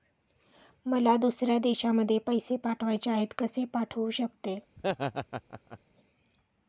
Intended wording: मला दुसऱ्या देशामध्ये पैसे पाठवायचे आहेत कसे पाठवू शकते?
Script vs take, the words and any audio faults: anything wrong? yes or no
yes